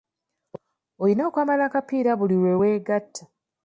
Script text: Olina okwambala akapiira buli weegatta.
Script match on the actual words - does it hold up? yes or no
no